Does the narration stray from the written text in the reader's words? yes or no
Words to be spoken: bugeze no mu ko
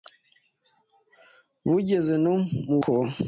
no